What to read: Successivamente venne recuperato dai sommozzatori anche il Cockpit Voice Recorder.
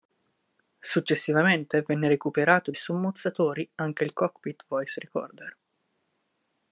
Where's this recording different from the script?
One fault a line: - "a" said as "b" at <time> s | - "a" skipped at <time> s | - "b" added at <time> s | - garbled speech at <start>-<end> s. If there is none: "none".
- "dai" skipped at 2.7 s